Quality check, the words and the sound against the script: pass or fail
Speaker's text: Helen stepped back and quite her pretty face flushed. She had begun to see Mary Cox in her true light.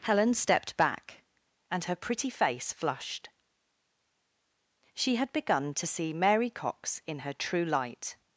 fail